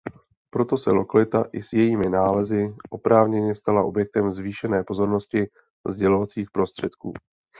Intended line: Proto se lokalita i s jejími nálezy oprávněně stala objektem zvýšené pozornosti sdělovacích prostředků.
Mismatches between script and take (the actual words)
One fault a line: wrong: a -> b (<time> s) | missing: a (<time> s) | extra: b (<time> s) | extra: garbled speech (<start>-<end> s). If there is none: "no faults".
no faults